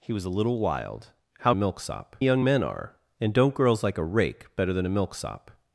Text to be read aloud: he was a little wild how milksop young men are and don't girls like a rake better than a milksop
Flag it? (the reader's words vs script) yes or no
no